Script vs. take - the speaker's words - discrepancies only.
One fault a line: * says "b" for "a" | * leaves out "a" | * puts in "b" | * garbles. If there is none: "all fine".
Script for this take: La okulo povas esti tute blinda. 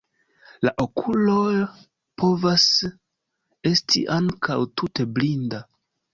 * puts in "ankaŭ"